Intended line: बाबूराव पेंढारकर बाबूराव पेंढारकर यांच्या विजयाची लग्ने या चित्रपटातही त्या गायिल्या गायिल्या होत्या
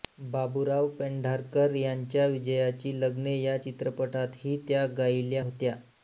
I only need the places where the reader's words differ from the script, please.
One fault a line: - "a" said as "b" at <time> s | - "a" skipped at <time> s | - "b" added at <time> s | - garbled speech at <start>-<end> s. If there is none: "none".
- "बाबूराव पेंढारकर" skipped at 1.8 s
- "गायिल्या" skipped at 5.4 s